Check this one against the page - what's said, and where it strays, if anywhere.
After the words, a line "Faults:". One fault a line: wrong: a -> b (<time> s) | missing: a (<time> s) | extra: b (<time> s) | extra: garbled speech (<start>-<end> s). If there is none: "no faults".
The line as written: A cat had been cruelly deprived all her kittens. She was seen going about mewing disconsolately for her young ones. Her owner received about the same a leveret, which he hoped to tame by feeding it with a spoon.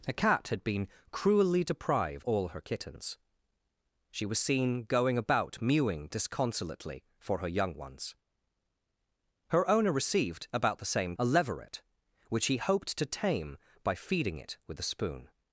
A cat had been cruelly deprived all her kittens. She was seen going about mewing disconsolately for her young ones. Her owner received about the same a leveret, which he hoped to tame by feeding it with a spoon.
Faults:
no faults